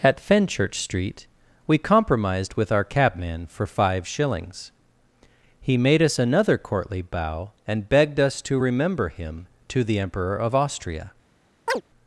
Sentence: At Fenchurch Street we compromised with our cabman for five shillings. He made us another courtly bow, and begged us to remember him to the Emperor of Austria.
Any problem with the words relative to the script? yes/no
no